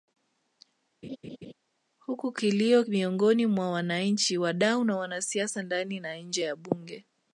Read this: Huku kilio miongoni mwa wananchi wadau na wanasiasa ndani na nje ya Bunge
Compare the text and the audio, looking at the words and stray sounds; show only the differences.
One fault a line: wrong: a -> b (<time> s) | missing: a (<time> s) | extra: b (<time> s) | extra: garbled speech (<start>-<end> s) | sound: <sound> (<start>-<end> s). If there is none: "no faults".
sound: laugh (1.0-1.5 s)